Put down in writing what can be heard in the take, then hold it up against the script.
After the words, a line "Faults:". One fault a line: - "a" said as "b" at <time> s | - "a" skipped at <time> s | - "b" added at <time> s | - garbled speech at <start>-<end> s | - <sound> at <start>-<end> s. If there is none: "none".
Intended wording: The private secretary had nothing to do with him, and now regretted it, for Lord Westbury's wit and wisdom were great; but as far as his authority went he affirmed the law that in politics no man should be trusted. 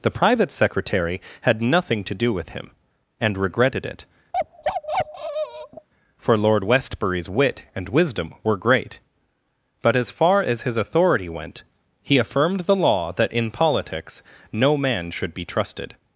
The private secretary had nothing to do with him, and regretted it, for Lord Westbury's wit and wisdom were great; but as far as his authority went he affirmed the law that in politics no man should be trusted.
Faults:
- "now" skipped at 3.4 s
- bark at 4.3-5.9 s